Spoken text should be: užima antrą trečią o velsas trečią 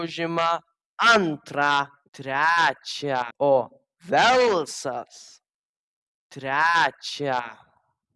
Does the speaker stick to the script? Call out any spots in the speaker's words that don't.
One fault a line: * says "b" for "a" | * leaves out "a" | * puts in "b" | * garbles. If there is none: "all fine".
all fine